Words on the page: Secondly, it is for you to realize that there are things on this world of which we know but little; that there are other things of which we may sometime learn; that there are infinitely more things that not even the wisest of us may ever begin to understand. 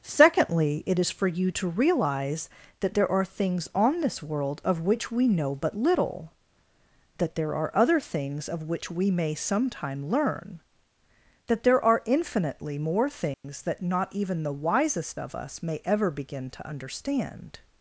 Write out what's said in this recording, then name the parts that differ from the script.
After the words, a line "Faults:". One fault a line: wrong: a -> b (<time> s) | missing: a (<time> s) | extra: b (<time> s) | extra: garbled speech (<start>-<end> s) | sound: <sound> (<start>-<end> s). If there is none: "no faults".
Secondly, it is for you to realize that there are things on this world of which we know but little; that there are other things of which we may sometime learn; that there are infinitely more things that not even the wisest of us may ever begin to understand.
Faults:
sound: dropout (13.3-13.4 s)